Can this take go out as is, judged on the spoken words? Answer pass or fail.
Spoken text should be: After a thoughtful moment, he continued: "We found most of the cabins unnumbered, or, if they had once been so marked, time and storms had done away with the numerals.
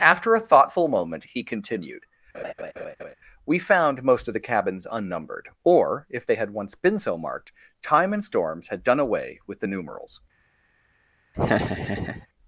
pass